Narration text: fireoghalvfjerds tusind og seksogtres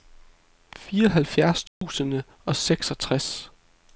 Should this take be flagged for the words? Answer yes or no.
no